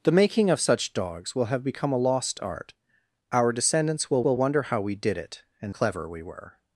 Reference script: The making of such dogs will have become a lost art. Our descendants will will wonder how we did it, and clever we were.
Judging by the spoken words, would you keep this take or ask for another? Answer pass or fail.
pass